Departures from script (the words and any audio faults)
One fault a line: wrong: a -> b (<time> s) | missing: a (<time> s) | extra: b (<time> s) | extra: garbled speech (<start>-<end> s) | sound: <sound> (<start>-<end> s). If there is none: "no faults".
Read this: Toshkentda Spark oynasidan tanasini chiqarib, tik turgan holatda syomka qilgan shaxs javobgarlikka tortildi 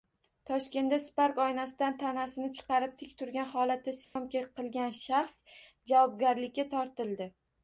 sound: dropout (4.0-4.2 s)